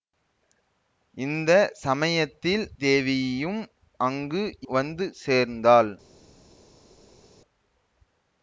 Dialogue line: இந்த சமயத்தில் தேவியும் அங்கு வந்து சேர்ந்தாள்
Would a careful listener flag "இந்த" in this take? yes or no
no